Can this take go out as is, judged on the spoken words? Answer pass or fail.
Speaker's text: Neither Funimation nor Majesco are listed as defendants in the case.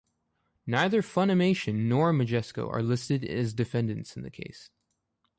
pass